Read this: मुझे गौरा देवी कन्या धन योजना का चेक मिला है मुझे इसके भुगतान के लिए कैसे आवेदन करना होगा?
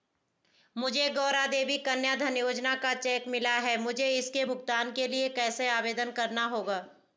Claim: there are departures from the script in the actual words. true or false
false